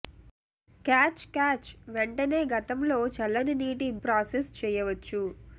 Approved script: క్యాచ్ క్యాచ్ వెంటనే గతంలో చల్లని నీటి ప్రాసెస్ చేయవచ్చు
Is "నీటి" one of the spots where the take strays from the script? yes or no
no